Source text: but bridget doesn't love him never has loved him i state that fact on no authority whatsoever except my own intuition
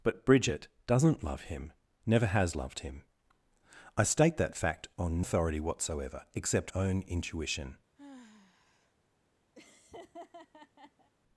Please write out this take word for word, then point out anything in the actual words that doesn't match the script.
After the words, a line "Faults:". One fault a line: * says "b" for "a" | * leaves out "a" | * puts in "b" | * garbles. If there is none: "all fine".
but bridget doesn't love him never has loved him i state that fact on authority whatsoever except own intuition
Faults:
* leaves out "no"
* leaves out "my"